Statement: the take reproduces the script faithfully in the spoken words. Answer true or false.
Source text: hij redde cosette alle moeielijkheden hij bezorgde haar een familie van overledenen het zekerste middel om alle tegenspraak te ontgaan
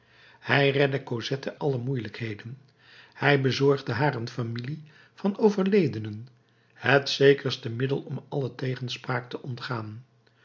true